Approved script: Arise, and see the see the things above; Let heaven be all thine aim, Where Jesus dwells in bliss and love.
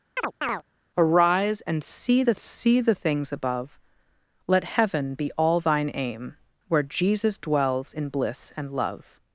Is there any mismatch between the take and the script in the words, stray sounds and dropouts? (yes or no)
yes